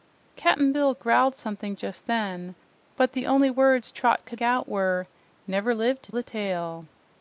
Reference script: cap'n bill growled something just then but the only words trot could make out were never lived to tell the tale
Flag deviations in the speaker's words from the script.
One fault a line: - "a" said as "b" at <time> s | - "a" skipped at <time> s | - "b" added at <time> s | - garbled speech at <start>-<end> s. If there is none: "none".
- "make" skipped at 4.4 s
- "tell" skipped at 6.1 s